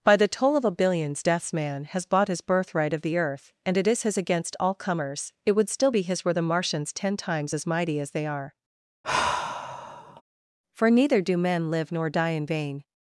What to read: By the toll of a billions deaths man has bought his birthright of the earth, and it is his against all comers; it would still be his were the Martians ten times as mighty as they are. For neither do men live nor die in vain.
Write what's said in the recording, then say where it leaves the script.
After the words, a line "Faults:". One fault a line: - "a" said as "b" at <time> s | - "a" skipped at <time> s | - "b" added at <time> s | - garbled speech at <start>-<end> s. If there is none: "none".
By the toll of a billions deaths man has bought his birthright of the earth, and it is his against all comers; it would still be his were the Martians ten times as mighty as they are. For neither do men live nor die in vain.
Faults:
none